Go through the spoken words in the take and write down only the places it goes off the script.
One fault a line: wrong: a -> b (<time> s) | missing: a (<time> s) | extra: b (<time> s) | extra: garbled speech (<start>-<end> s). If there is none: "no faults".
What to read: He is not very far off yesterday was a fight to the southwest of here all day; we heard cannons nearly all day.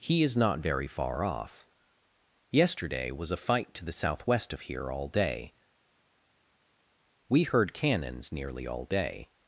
no faults